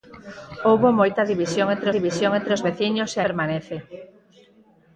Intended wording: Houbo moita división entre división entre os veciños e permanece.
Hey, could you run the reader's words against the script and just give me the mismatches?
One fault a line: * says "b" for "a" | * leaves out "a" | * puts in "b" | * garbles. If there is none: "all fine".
all fine